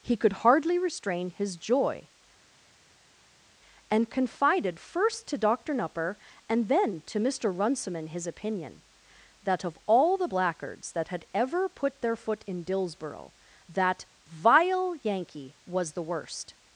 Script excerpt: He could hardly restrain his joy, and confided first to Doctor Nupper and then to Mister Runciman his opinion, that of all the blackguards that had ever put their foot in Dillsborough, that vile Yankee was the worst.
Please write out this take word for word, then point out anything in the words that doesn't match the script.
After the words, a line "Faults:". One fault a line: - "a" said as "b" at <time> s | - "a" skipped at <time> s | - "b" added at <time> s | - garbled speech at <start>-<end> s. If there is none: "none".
He could hardly restrain his joy, and confided first to Doctor Nupper and then to Mister Runciman his opinion, that of all the blackguards that had ever put their foot in Dillsborough, that vile Yankee was the worst.
Faults:
none